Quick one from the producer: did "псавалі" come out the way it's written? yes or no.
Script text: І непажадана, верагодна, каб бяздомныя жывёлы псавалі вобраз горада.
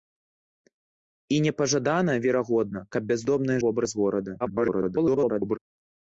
no